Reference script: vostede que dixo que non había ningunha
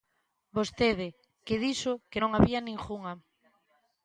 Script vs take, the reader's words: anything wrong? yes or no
no